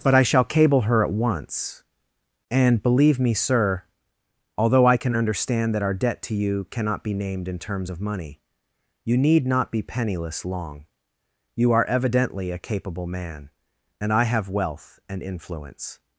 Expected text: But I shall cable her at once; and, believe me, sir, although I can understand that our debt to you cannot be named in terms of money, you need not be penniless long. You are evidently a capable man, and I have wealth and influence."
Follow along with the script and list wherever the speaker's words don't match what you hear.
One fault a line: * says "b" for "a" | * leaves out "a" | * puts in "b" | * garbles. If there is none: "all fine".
all fine